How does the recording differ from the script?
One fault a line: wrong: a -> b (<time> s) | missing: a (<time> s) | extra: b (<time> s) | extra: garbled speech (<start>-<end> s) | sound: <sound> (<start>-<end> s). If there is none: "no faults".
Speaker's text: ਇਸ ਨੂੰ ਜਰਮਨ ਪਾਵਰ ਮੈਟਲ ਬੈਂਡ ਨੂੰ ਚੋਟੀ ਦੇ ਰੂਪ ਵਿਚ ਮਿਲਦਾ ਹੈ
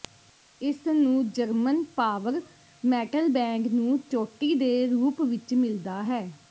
no faults